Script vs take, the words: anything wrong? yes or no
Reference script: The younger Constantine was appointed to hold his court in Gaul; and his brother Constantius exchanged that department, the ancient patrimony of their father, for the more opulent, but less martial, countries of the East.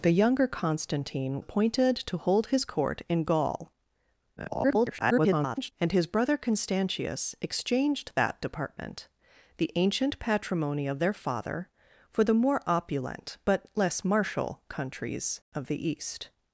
yes